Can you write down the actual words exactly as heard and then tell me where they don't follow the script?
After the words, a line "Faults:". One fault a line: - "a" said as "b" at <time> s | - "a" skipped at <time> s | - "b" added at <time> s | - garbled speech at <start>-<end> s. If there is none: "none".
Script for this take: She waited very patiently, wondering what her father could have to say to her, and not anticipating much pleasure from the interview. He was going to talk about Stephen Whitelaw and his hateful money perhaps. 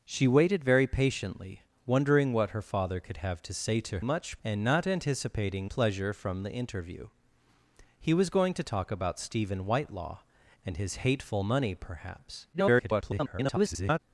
She waited very patiently, wondering what her father could have to say to much, and not anticipating pleasure from the interview. He was going to talk about Stephen Whitelaw and his hateful money perhaps. [garbled]
Faults:
- "her" said as "much" at 4.0 s
- "much" skipped at 5.7 s
- garbled speech at 12.5-14.0 s